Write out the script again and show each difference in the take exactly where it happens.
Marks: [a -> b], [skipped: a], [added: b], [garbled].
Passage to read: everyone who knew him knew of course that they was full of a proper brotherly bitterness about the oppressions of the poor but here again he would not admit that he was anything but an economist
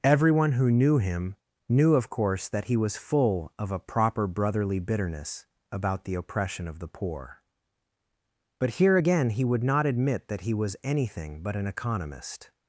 everyone who knew him knew of course that [they -> he] was full of a proper brotherly bitterness about the [oppressions -> oppression] of the poor but here again he would not admit that he was anything but an economist